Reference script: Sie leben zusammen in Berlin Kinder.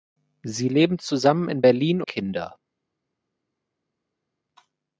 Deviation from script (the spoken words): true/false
false